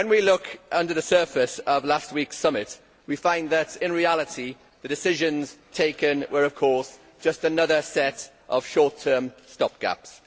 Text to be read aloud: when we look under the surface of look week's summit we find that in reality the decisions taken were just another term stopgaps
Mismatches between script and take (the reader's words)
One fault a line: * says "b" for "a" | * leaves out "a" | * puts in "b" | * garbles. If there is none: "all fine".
* says "last" for "look"
* puts in "of course"
* puts in "set of short"